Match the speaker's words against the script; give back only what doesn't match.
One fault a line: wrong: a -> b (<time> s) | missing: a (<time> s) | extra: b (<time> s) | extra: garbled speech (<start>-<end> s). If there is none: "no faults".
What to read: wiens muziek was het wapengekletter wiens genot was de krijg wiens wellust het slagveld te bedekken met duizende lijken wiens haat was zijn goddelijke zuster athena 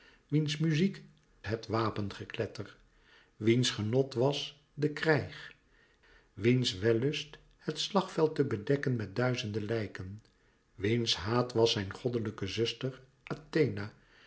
missing: was (1.0 s)